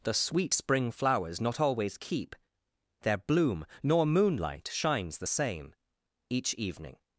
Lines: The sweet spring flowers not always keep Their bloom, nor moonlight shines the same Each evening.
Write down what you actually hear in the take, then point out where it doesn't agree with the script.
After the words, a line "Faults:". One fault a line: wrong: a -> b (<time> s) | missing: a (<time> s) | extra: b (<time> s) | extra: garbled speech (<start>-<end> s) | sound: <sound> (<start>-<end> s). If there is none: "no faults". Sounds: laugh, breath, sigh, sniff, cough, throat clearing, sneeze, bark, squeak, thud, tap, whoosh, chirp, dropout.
The sweet spring flowers not always keep Their bloom, nor moonlight shines the same Each evening.
Faults:
no faults